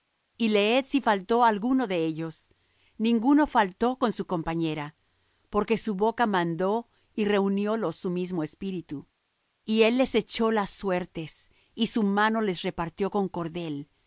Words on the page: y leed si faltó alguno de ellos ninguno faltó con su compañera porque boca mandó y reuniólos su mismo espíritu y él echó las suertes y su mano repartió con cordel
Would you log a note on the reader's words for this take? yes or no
yes